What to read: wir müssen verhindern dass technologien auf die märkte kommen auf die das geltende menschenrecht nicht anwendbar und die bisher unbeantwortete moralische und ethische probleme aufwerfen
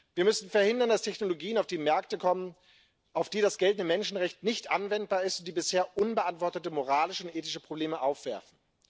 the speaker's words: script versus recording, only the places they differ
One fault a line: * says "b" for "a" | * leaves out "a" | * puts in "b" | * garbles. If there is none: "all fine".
* puts in "ist"